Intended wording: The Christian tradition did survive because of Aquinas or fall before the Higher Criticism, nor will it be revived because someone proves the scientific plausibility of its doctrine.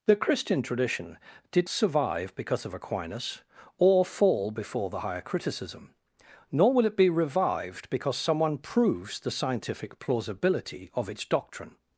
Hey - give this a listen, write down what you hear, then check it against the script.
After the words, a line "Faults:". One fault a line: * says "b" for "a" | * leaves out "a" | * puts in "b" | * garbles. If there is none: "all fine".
The Christian tradition did survive because of Aquinas or fall before the Higher Criticism, nor will it be revived because someone proves the scientific plausibility of its doctrine.
Faults:
all fine